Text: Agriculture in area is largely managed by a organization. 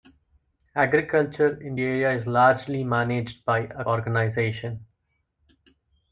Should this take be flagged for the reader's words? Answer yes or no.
no